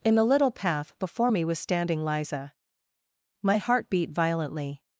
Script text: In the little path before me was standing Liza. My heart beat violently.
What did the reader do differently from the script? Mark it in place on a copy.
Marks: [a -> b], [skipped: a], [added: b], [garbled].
In the little path before me was standing Liza. My heart beat violently.